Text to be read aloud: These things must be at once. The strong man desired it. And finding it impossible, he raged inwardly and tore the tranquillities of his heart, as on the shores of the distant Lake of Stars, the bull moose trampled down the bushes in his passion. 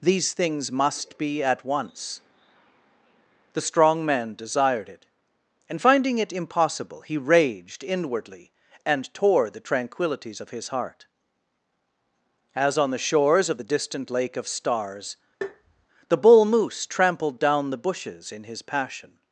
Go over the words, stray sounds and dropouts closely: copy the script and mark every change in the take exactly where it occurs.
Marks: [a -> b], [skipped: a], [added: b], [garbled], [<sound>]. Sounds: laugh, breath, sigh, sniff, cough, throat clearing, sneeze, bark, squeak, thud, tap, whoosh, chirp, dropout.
These things must be at once. The strong man desired it. And finding it impossible, he raged inwardly and tore the tranquillities of his heart, as on the shores of the distant Lake of Stars, [tap] the bull moose trampled down the bushes in his passion.